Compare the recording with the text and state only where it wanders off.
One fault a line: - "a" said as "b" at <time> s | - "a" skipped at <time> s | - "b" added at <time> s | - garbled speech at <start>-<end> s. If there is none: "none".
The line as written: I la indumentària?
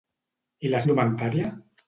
none